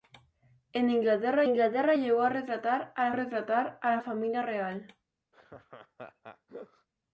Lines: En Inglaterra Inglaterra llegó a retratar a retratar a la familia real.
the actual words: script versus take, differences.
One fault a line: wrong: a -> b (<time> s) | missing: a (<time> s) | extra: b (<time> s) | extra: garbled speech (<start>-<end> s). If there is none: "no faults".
no faults